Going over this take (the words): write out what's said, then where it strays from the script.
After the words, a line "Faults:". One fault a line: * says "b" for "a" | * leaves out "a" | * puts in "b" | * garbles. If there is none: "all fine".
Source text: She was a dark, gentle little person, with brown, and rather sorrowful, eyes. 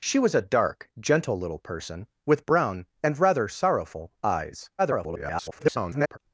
She was a dark, gentle little person, with brown, and rather sorrowful, eyes. [garbled]
Faults:
* garbles